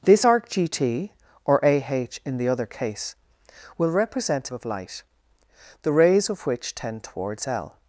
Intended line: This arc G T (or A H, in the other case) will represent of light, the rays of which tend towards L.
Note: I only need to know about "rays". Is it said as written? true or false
true